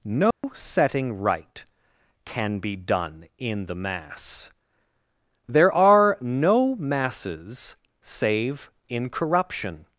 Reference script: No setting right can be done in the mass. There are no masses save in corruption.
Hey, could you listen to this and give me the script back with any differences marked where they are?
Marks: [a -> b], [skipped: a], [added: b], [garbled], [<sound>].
No [dropout] setting right can be done in the mass. There are no masses save in corruption.